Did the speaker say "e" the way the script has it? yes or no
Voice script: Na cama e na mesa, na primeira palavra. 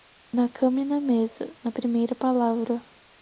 yes